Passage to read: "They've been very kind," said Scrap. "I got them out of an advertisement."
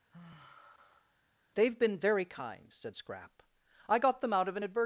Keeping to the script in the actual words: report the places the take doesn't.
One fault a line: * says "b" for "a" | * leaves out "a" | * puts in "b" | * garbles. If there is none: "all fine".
all fine